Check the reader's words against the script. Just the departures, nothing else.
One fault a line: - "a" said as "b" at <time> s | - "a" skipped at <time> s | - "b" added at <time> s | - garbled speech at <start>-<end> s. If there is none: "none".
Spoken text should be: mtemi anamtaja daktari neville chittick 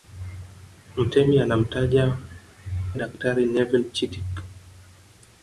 none